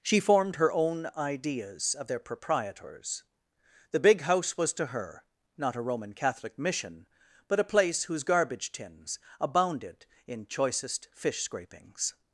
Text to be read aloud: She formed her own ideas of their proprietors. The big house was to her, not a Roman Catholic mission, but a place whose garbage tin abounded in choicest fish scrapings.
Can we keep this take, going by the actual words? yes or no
no